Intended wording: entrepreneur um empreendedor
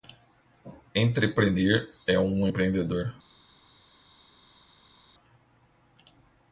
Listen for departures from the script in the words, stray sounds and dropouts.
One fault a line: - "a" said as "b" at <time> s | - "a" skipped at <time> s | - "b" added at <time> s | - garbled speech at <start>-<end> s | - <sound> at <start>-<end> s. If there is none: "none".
- "é" added at 2.1 s